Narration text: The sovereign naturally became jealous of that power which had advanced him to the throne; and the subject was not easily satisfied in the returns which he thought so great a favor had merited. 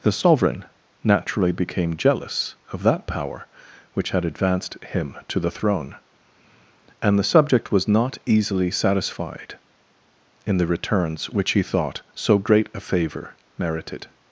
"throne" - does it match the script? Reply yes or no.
yes